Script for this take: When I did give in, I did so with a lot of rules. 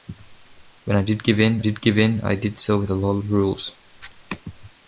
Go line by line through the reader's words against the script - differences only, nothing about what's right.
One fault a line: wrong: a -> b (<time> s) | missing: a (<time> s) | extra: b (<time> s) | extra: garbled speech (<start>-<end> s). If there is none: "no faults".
extra: did give in (1.6 s)